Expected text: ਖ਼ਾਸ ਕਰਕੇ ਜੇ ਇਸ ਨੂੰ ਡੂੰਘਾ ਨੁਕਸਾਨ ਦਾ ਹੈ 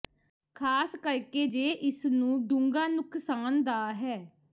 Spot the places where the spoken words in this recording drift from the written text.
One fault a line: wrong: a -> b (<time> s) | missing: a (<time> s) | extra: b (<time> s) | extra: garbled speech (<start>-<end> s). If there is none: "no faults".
no faults